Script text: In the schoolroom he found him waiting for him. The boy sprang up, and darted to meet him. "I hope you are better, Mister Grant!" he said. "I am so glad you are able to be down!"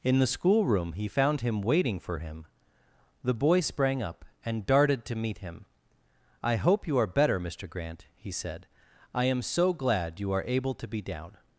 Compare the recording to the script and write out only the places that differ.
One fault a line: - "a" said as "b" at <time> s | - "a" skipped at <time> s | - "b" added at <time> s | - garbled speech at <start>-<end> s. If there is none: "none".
none